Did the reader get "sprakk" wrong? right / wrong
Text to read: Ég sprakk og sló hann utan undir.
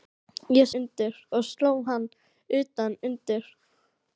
wrong